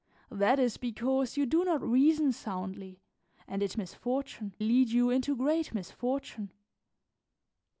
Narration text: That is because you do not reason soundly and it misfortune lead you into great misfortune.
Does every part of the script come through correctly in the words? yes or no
yes